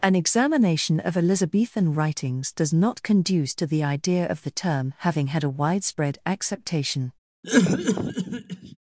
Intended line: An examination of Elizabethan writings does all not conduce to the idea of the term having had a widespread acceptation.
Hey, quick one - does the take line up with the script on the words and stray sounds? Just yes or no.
no